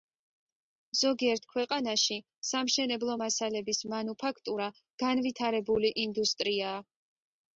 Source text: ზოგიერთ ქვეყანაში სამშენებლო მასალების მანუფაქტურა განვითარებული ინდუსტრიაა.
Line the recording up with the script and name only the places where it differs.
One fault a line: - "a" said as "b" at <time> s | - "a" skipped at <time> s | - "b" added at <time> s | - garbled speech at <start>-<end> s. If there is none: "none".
none